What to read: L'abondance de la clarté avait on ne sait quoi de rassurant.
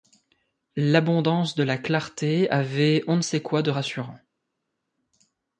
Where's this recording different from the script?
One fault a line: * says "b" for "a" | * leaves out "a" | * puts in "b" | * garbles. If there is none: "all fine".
all fine